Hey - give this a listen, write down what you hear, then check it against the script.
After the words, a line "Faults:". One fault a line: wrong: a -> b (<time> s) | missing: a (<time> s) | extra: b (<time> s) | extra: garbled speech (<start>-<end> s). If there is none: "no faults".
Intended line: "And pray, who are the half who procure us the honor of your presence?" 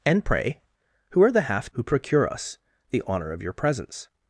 "And pray, who are the half who procure us the honor of your presence?"
Faults:
no faults